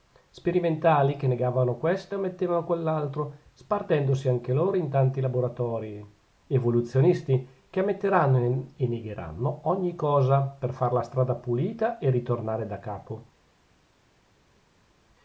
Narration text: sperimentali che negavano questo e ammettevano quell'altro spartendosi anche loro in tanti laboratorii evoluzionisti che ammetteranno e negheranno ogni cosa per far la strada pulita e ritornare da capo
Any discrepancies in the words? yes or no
no